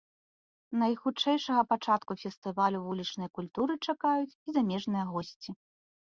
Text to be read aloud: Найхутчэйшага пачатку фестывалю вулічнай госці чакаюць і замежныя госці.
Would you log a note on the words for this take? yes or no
yes